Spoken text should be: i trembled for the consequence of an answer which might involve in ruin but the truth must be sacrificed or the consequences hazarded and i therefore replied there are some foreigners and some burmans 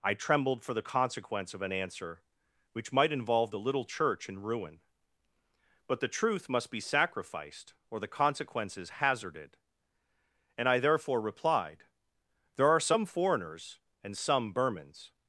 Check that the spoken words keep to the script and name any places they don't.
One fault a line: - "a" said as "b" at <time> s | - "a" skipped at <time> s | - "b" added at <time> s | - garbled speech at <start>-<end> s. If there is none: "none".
- "the little church" added at 3.5 s